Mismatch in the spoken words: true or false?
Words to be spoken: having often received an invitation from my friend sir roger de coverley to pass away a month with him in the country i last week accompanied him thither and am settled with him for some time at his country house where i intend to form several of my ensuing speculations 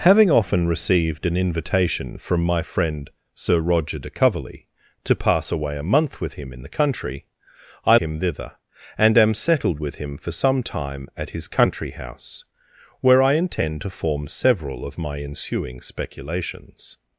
true